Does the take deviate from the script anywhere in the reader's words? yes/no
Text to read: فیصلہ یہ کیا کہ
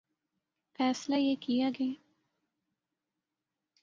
no